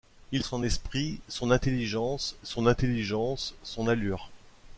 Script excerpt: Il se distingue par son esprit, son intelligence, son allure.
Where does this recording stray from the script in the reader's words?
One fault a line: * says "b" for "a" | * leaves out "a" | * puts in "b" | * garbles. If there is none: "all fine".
* says "son esprit" for "se distingue par"
* says "intelligence" for "esprit"